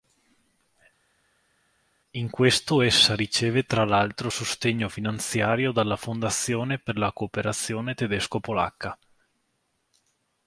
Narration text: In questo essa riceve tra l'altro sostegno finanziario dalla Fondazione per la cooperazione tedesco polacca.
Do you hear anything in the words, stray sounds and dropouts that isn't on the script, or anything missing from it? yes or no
no